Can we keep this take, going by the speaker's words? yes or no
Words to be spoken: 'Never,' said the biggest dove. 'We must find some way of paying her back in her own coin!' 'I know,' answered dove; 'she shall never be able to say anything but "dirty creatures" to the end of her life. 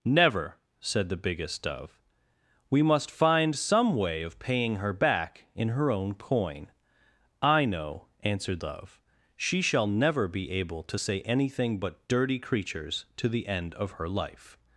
yes